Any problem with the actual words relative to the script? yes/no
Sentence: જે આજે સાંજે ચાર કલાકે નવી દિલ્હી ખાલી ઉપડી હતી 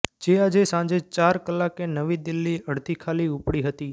yes